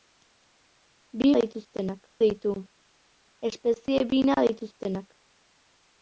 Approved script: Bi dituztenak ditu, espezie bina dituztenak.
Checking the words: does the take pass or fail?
pass